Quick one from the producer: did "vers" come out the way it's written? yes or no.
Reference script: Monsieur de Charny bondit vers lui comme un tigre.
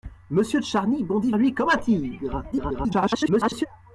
no